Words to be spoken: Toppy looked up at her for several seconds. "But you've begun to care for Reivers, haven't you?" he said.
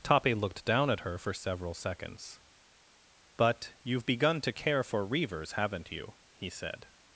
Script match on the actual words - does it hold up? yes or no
no